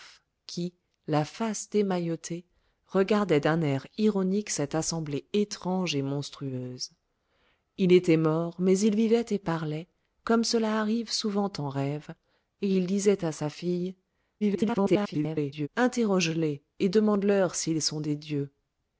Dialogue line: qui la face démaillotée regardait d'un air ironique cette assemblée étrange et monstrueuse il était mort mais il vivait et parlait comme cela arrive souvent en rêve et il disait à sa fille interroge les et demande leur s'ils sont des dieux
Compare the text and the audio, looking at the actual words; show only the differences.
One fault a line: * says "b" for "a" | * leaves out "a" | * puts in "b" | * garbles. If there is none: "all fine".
* garbles